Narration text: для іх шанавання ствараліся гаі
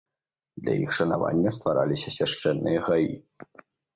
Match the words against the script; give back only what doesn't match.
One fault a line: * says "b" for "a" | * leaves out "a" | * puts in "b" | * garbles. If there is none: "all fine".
* puts in "свяшчэнныя"